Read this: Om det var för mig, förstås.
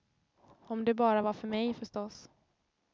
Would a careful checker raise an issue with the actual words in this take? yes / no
yes